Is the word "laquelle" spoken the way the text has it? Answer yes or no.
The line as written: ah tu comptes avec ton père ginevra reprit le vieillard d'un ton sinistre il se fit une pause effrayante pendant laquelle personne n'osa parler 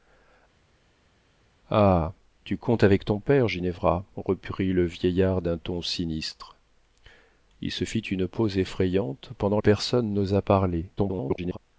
no